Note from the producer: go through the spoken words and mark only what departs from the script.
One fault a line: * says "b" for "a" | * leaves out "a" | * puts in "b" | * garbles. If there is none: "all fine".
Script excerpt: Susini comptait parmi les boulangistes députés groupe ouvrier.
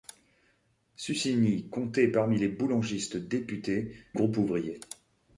all fine